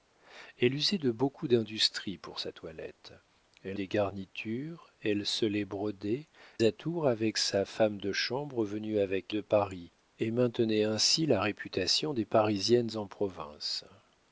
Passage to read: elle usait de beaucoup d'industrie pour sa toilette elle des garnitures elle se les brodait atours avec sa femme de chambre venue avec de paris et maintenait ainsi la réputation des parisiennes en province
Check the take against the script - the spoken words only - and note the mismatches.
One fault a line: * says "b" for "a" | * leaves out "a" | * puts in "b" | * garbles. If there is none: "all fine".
all fine